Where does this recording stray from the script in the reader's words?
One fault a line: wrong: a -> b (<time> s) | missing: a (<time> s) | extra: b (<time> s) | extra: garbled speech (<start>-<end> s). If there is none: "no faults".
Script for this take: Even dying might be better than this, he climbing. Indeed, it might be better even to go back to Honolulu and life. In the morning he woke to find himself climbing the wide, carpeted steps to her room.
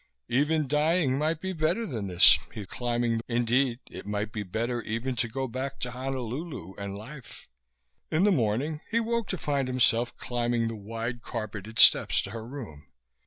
no faults